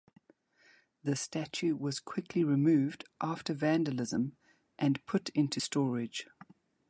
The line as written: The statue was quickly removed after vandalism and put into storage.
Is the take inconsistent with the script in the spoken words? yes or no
no